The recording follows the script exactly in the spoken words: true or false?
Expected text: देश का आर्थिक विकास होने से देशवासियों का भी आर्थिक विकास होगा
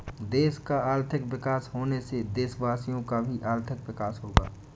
true